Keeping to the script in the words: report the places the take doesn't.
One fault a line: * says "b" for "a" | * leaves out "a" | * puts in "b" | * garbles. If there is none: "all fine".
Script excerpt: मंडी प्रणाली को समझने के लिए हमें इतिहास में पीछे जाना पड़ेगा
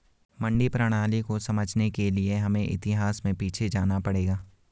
all fine